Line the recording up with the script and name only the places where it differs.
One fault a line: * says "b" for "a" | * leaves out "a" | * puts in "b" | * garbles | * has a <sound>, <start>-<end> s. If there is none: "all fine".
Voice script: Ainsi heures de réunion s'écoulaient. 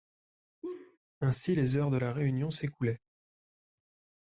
* has a laugh, 0.6-1.0 s
* puts in "les"
* puts in "la"